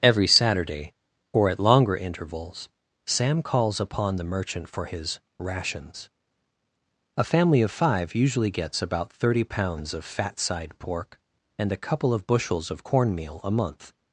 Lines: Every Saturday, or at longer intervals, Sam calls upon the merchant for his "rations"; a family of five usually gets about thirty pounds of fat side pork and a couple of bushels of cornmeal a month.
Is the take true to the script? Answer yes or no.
yes